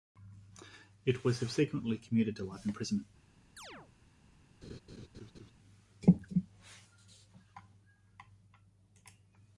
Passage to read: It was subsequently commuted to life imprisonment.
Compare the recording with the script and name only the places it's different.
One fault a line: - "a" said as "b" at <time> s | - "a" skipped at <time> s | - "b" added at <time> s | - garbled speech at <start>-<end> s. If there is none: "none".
none